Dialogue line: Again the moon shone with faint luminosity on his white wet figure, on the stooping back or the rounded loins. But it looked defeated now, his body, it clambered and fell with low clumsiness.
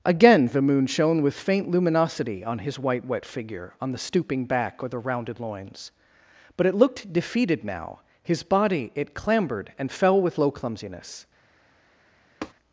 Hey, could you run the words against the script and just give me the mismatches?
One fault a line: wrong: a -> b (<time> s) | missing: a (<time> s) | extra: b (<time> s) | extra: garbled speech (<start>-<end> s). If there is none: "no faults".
no faults